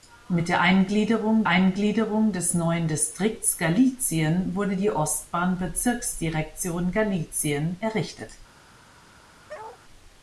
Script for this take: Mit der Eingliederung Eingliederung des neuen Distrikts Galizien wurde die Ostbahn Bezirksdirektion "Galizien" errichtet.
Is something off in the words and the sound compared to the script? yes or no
yes